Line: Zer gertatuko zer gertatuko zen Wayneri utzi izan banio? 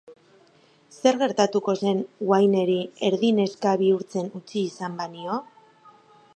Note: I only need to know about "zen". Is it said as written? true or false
false